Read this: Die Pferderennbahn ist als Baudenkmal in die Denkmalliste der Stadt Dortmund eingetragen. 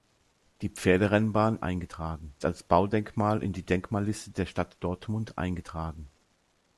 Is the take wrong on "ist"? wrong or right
wrong